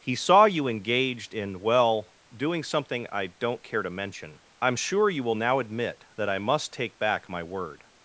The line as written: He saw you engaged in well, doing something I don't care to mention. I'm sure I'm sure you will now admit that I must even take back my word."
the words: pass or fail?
fail